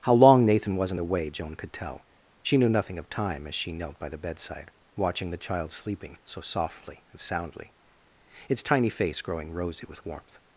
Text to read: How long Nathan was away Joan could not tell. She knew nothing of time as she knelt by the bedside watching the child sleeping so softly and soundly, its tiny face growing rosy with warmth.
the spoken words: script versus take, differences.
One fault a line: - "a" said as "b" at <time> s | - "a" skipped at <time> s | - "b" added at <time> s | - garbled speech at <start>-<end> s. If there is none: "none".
- "was" said as "wasn't" at 0.8 s
- "not" skipped at 1.7 s